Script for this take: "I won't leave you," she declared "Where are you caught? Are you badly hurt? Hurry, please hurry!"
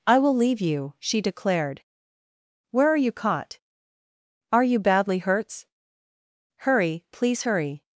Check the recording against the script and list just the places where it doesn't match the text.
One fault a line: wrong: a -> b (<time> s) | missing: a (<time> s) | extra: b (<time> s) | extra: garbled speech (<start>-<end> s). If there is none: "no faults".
wrong: won't -> will (0.2 s)
wrong: hurt -> hurts (5.2 s)